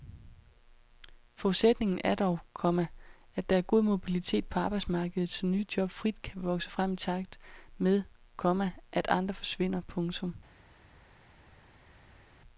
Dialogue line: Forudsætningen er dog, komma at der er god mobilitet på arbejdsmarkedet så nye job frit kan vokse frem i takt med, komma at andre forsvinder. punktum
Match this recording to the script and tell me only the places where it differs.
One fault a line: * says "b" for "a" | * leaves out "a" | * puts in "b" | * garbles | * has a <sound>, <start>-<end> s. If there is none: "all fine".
all fine